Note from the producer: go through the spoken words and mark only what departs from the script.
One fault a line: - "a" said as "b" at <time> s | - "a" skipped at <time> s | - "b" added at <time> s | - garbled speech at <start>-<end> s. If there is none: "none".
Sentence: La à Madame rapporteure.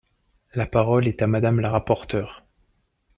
- "parole est" added at 0.6 s
- "la" added at 1.6 s